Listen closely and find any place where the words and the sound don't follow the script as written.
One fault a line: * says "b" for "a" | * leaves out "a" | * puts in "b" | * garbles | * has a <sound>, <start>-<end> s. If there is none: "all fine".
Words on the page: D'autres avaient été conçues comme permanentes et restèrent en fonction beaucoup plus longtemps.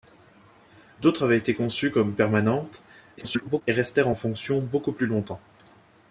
* garbles